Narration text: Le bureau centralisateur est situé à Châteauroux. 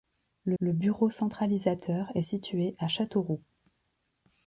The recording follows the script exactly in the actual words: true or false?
false